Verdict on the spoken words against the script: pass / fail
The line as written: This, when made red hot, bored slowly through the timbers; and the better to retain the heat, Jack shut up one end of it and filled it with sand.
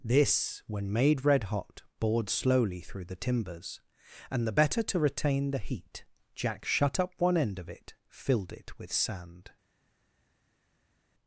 fail